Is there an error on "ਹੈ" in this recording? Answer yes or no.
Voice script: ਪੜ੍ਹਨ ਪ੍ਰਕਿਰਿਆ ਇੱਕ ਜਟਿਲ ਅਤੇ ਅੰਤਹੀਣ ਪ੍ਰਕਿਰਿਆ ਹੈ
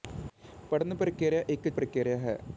no